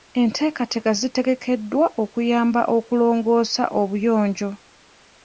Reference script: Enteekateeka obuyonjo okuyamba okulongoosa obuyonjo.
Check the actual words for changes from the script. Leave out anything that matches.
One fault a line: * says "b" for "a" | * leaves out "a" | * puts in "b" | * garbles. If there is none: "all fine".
* says "zitegekeddwa" for "obuyonjo"